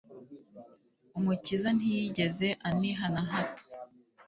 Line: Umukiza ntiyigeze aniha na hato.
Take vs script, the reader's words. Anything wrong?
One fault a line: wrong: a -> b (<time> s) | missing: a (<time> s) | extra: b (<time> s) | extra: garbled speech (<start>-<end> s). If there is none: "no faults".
no faults